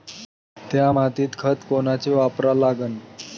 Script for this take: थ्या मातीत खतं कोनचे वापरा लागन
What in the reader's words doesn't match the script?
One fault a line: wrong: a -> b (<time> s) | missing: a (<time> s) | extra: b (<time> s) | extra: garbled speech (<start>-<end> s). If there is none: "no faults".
no faults